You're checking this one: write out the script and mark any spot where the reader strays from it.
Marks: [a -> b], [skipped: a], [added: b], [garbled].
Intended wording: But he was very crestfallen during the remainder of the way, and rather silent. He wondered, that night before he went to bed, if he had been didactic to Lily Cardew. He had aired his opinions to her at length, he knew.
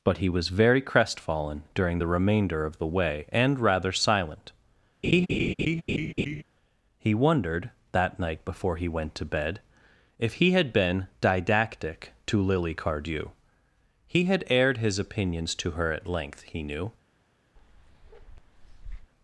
But he was very crestfallen during the remainder of the way, and rather silent. He wondered, that night before he went to bed, if he had been didactic to Lily Cardew. He had aired his opinions to her at length, he knew.